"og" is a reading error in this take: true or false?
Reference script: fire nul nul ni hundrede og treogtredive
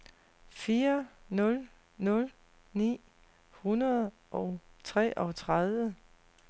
false